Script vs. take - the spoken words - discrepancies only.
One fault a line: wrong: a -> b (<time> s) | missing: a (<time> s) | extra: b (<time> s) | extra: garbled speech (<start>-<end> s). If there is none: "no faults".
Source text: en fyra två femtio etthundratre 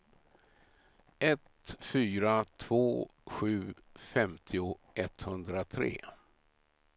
wrong: en -> ett (1.2 s)
extra: sju (3.2 s)